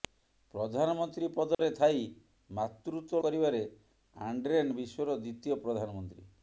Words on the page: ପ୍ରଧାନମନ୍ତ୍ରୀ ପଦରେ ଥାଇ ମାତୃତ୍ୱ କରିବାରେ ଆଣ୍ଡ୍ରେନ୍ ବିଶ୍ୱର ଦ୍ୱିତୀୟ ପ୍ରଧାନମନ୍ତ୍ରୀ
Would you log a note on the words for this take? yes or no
no